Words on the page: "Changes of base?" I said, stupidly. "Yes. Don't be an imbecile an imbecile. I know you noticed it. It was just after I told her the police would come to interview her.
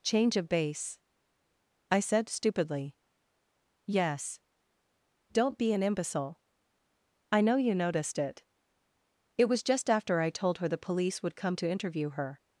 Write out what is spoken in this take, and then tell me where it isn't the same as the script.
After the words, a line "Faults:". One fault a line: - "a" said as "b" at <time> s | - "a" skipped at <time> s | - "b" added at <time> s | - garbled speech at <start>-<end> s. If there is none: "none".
"Change of base?" I said, stupidly. "Yes. Don't be an imbecile. I know you noticed it. It was just after I told her the police would come to interview her.
Faults:
- "Changes" said as "Change" at 0.0 s
- "an imbecile" skipped at 6.4 s